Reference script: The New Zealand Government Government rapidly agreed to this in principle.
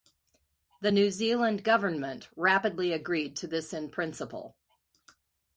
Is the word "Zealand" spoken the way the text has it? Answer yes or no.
yes